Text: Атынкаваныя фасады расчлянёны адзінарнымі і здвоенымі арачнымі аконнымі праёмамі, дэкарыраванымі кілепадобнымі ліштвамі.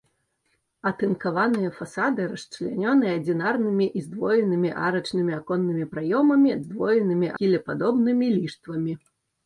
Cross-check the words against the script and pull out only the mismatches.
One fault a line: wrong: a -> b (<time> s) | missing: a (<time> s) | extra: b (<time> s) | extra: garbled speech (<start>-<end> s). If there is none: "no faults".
wrong: дэкарыраванымі -> здвоенымі (6.7 s)